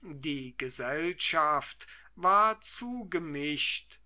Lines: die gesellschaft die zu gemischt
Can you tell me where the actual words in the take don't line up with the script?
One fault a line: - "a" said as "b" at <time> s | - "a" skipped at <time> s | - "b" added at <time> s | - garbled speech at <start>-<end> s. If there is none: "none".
- "die" said as "war" at 2.1 s